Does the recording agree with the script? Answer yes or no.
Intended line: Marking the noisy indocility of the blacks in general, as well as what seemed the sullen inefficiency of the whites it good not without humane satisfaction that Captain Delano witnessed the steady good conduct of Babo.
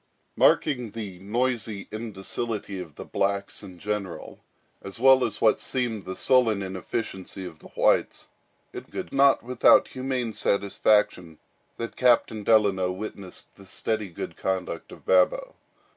yes